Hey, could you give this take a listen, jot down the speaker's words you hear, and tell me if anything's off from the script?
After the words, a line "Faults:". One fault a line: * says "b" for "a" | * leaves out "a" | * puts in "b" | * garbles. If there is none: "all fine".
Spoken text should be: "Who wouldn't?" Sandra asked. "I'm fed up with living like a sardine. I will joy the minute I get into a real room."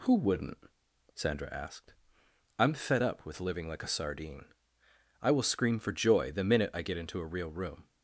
"Who wouldn't?" Sandra asked. "I'm fed up with living like a sardine. I will scream for joy the minute I get into a real room."
Faults:
* puts in "scream for"